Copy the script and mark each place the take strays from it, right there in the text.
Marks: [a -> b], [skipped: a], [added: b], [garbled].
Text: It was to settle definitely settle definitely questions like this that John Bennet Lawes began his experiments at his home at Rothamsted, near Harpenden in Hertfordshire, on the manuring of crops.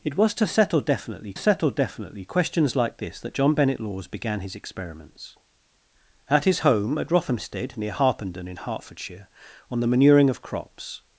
It was to settle definitely settle definitely questions like this that John Bennet Lawes began his experiments at his home at Rothamsted, near Harpenden in Hertfordshire, on the manuring of crops.